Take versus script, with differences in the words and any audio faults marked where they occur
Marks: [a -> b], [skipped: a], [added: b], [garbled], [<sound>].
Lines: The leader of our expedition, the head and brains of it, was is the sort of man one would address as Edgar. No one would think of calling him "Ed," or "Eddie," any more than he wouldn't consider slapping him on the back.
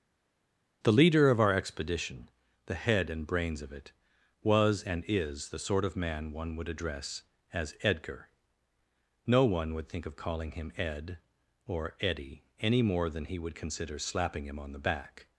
The leader of our expedition, the head and brains of it, was [added: and] is the sort of man one would address as Edgar. No one would think of calling him "Ed," or "Eddie," any more than he [wouldn't -> would] consider slapping him on the back.